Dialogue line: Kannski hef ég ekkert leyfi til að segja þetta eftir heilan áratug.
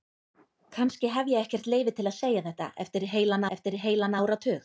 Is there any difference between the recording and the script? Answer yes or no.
yes